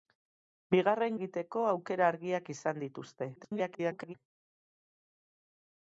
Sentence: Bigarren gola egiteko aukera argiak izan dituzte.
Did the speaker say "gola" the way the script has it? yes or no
no